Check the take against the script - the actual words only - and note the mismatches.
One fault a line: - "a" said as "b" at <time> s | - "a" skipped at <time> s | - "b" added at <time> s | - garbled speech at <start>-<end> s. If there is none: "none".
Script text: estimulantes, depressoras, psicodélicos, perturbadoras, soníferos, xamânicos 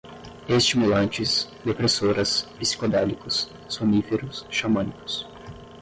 - "perturbadoras" skipped at 3.5 s